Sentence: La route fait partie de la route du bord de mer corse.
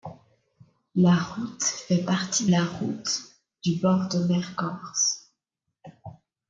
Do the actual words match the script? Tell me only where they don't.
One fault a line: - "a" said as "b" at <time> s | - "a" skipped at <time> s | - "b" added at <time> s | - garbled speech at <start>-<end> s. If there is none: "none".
- "de" skipped at 2.5 s